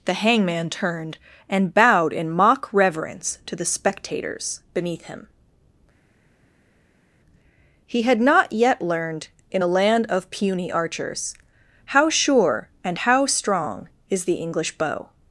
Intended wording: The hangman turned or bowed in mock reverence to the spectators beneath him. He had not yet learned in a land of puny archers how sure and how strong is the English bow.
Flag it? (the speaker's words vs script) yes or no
yes